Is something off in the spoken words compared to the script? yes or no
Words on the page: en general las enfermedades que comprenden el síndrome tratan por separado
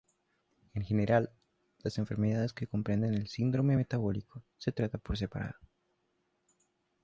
yes